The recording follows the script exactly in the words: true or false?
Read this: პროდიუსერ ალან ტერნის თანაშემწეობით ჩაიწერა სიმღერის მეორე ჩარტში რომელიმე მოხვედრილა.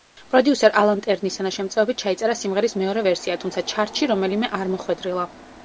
false